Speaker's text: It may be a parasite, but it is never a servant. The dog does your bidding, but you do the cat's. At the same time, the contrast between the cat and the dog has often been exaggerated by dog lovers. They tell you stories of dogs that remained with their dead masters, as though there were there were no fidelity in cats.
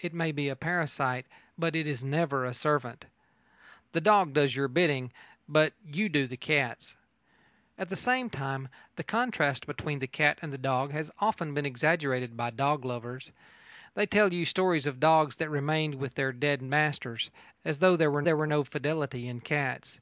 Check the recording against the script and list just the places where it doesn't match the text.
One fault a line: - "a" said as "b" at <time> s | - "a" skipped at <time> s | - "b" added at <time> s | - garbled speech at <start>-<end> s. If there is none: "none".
none